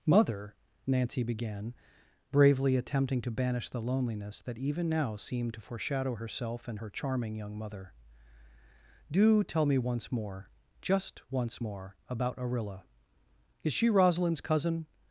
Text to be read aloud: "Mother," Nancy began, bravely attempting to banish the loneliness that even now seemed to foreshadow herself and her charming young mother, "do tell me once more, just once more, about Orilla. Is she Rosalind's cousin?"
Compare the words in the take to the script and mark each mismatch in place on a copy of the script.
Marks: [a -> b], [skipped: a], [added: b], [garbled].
"Mother," Nancy began, bravely attempting to banish the loneliness that even now seemed to foreshadow herself and her charming young mother, "do tell me once more, just once more, about Orilla. Is she Rosalind's cousin?"